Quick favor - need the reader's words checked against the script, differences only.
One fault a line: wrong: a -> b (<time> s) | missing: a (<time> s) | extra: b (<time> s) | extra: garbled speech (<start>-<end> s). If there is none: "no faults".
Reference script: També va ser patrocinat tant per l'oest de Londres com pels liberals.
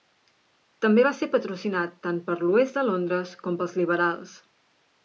no faults